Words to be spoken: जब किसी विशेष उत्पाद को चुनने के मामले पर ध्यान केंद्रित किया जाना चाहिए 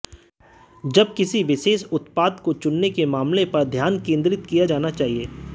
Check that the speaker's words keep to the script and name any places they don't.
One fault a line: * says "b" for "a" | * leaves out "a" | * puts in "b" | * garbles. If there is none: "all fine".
all fine